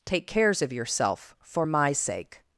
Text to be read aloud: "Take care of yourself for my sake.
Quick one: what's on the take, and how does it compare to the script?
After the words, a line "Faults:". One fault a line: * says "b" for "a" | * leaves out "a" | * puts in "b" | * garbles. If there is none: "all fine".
"Take cares of yourself for my sake.
Faults:
* says "cares" for "care"